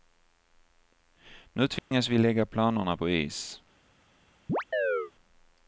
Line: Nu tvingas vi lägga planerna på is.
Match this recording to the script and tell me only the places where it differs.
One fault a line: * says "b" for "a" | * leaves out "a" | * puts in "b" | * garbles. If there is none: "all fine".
all fine